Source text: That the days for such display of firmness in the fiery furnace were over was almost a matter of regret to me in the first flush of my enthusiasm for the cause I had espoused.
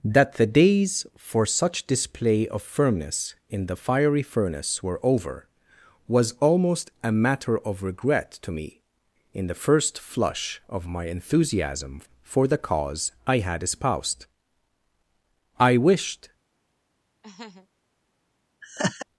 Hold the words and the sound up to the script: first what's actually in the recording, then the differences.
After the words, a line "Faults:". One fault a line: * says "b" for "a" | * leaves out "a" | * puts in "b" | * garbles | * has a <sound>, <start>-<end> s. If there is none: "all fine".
That the days for such display of firmness in the fiery furnace were over was almost a matter of regret to me in the first flush of my enthusiasm for the cause I had espoused. I wished
Faults:
* puts in "I wished"
* has a laugh, 17.2-17.7 s
* has a laugh, 18.6-19.1 s